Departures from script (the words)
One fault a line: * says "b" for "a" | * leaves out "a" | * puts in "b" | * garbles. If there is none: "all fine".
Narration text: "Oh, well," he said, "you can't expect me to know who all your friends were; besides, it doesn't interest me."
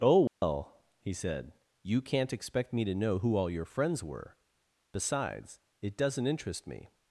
all fine